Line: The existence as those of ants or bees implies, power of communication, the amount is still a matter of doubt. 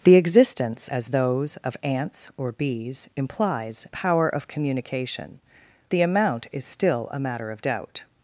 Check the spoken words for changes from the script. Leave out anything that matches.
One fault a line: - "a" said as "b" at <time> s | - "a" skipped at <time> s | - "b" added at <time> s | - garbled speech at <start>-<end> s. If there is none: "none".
none